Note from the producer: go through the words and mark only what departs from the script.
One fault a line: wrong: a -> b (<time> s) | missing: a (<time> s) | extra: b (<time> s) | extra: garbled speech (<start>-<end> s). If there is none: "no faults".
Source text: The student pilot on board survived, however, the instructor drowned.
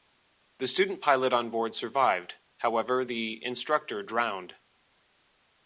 no faults